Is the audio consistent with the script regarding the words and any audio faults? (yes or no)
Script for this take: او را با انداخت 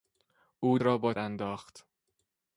yes